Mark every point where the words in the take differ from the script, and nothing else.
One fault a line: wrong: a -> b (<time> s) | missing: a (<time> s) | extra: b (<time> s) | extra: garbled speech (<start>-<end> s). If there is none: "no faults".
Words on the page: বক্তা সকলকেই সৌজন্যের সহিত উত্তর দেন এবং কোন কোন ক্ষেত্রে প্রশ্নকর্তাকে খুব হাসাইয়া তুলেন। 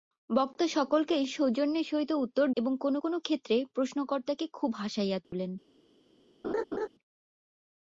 missing: দেন (2.5 s)